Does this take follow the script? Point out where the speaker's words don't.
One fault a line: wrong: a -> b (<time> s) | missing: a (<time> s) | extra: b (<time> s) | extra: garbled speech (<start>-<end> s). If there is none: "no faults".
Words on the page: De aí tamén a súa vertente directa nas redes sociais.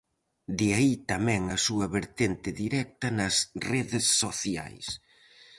no faults